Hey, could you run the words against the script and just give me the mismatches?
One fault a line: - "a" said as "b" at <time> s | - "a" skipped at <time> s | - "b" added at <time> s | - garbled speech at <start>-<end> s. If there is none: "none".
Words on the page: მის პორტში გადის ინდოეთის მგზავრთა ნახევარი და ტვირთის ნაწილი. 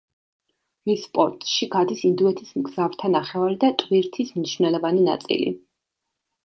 - "მნიშვნელოვანი" added at 4.4 s